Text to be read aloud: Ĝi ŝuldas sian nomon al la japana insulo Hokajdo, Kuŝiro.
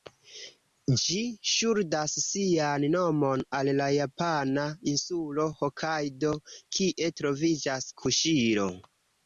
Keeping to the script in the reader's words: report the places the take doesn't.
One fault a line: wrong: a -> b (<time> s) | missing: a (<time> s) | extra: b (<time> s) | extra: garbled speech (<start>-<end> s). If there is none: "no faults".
extra: kie troviĝas (6.8 s)